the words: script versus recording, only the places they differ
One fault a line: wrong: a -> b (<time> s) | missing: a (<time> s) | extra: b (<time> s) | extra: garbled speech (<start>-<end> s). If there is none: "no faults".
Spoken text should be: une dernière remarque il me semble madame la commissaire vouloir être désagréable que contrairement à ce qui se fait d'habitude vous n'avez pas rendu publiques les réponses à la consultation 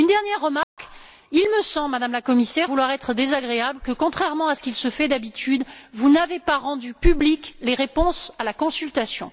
no faults